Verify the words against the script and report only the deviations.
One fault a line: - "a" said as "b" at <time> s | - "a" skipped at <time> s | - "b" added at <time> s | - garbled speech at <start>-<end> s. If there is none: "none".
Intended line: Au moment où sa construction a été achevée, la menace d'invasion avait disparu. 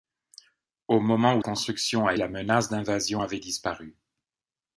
- "sa" skipped at 1.4 s
- "été achevée" skipped at 2.1 s